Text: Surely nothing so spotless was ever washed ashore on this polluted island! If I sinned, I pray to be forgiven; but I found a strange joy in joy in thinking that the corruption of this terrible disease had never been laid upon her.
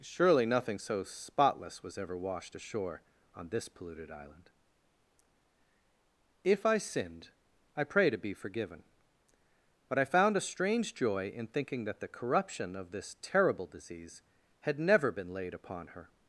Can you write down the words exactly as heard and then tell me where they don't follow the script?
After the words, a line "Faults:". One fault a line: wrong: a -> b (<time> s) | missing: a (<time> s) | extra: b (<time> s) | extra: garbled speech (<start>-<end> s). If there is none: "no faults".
Surely nothing so spotless was ever washed ashore on this polluted island! If I sinned, I pray to be forgiven; but I found a strange joy in thinking that the corruption of this terrible disease had never been laid upon her.
Faults:
missing: joy in (11.5 s)